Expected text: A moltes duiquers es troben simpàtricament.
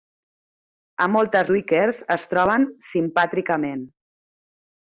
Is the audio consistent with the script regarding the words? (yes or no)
yes